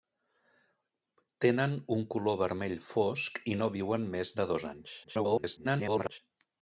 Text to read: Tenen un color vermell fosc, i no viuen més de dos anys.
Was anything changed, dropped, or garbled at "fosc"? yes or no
no